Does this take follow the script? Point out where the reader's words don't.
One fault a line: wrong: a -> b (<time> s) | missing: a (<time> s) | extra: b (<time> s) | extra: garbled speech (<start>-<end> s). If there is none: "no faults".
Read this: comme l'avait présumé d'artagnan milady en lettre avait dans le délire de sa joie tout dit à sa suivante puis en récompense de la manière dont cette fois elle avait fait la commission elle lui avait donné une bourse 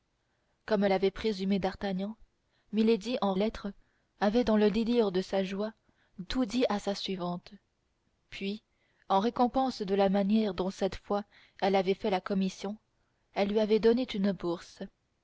no faults